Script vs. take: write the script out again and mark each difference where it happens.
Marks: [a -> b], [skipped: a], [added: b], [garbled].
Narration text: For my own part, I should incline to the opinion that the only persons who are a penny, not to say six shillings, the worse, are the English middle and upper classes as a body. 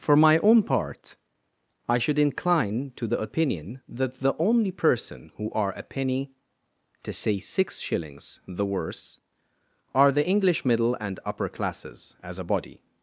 For my own part, I should incline to the opinion that the only [persons -> person] who are a penny, [skipped: not] to say six shillings, the worse, are the English middle and upper classes as a body.